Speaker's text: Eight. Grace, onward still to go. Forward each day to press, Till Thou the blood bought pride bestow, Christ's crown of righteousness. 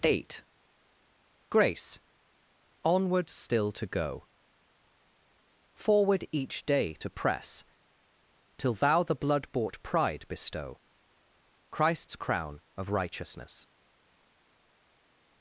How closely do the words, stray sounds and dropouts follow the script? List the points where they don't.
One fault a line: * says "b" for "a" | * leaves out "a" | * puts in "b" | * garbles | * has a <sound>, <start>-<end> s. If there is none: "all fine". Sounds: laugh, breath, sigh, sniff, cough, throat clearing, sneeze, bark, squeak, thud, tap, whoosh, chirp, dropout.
all fine